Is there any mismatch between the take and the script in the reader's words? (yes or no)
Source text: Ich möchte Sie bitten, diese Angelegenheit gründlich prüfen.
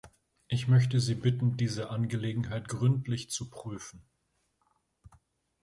yes